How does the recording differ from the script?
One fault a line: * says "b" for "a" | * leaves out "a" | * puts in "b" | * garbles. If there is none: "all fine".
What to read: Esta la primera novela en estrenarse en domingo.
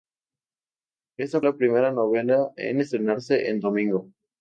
all fine